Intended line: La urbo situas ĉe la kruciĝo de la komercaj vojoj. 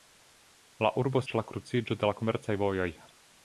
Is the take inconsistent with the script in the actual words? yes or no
yes